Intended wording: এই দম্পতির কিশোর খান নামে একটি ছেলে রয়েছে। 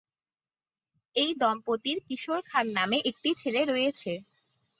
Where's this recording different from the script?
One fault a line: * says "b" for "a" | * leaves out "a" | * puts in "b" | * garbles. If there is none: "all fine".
all fine